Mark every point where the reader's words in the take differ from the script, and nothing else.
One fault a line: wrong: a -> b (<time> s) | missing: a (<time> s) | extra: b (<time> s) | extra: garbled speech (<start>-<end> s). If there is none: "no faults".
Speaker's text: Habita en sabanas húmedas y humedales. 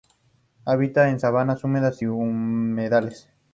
no faults